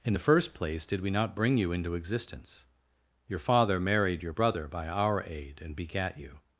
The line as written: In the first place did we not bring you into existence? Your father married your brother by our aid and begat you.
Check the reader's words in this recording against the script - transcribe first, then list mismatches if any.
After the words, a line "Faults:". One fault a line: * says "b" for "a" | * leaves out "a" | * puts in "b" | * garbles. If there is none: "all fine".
In the first place did we not bring you into existence? Your father married your brother by our aid and begat you.
Faults:
all fine